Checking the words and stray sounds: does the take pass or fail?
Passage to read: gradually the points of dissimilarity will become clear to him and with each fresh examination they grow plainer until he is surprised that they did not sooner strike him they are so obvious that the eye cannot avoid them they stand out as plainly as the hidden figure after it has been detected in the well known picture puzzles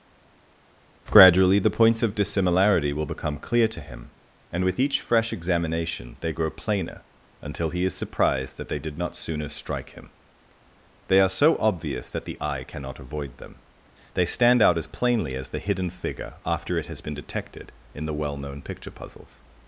pass